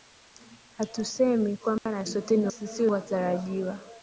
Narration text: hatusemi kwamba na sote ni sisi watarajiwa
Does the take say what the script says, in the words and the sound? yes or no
no